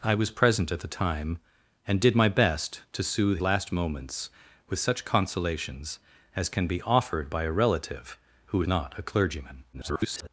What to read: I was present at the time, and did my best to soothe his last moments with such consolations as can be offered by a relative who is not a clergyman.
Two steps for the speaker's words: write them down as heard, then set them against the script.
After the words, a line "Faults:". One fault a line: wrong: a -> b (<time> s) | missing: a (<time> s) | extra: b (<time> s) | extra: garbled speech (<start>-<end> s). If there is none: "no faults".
I was present at the time, and did my best to soothe last moments with such consolations as can be offered by a relative who not a clergyman. [garbled]
Faults:
missing: his (3.4 s)
missing: is (8.6 s)
extra: garbled speech (9.7-10.3 s)